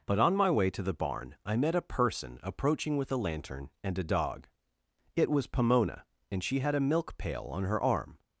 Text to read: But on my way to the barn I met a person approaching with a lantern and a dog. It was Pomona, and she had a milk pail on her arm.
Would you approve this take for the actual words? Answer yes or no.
yes